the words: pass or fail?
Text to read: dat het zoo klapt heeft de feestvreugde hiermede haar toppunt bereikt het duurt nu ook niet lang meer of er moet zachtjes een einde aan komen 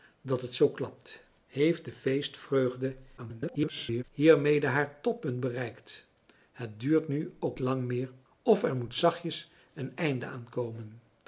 fail